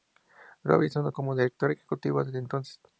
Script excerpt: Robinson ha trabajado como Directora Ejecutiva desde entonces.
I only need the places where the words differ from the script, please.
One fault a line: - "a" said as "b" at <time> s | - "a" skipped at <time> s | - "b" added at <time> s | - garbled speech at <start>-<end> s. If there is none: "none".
- "trabajado" skipped at 1.1 s